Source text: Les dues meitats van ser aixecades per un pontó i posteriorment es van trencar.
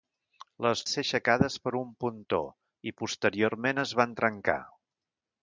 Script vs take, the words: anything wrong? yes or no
yes